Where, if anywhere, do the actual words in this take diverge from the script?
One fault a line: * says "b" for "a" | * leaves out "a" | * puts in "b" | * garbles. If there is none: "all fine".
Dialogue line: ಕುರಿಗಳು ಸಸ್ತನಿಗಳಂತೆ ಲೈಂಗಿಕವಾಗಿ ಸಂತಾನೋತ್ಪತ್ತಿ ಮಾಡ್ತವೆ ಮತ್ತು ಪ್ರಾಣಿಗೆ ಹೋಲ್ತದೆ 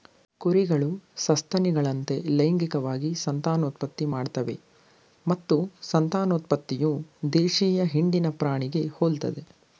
* puts in "ಸಂತಾನೋತ್ಪತ್ತಿಯು ದೇಶೀಯ ಹಿಂಡಿನ"